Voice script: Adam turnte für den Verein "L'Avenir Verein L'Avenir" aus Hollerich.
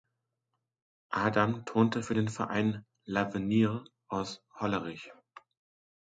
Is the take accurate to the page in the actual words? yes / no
no